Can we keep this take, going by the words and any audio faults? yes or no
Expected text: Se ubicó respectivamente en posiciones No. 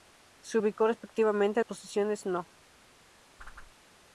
no